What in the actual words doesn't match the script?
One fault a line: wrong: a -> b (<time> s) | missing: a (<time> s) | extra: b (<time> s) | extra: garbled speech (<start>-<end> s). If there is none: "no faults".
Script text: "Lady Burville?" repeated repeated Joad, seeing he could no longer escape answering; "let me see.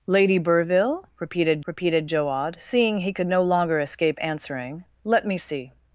no faults